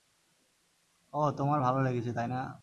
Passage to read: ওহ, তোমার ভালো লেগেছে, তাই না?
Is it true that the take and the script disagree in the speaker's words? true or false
false